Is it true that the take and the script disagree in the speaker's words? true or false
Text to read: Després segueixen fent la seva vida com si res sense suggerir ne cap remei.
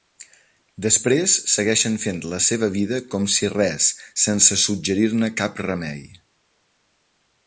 false